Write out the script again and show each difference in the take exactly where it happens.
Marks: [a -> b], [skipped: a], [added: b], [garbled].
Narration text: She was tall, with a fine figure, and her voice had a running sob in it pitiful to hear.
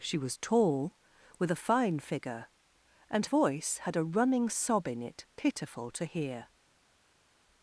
She was tall, with a fine figure, and [skipped: her] voice had a running sob in it pitiful to hear.